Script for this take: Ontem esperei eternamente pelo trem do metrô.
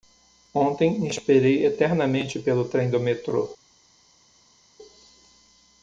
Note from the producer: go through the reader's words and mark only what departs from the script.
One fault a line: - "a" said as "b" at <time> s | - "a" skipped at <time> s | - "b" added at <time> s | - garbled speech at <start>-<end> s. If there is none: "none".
none